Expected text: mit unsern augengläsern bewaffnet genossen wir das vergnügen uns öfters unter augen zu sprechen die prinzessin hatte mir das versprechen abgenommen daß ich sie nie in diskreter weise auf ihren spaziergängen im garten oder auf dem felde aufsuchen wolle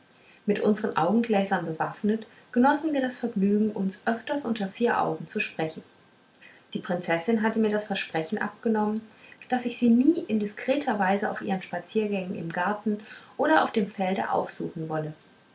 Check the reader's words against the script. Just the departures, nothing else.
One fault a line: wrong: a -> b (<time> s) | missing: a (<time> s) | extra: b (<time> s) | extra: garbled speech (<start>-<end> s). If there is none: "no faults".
extra: vier (4.7 s)